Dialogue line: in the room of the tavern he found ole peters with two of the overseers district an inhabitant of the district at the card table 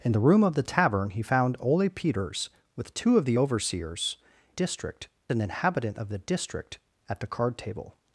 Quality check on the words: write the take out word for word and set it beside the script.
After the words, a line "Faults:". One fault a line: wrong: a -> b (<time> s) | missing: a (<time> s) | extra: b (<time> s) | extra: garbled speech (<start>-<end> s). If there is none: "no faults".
in the room of the tavern he found ole peters with two of the overseers district an inhabitant of the district at the card table
Faults:
no faults